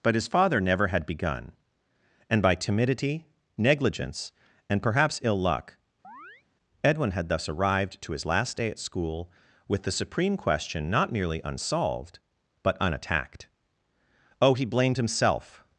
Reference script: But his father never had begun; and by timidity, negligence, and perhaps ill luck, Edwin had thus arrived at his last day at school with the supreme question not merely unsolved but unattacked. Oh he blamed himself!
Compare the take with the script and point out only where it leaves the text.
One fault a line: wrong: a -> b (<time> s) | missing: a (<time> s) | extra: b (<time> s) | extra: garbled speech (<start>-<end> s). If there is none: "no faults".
wrong: at -> to (8.0 s)